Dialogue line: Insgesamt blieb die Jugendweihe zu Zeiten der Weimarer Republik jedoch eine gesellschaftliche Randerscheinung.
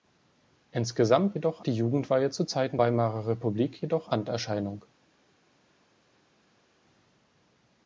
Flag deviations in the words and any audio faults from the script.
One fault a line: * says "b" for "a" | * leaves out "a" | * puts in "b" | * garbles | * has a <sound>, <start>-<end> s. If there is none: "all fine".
* says "jedoch" for "blieb"
* leaves out "der"
* leaves out "eine gesellschaftliche"